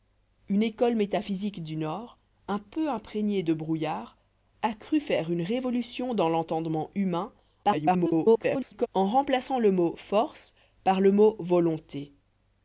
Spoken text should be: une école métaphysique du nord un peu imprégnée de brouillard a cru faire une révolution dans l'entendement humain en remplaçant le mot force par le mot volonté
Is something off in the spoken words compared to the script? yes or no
yes